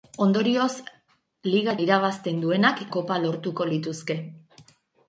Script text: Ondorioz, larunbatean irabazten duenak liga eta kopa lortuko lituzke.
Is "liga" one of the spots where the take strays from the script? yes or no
yes